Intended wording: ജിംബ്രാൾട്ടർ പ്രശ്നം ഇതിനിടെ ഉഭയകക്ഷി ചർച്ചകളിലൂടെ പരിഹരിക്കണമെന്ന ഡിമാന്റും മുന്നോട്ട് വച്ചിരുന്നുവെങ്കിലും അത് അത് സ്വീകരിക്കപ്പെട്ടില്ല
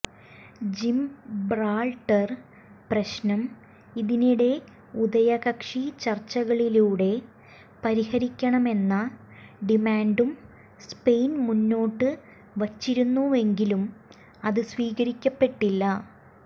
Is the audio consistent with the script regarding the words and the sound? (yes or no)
no